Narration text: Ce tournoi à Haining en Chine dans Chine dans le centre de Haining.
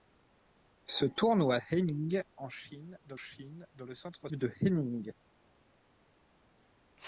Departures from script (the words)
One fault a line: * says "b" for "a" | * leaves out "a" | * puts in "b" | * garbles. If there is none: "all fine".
all fine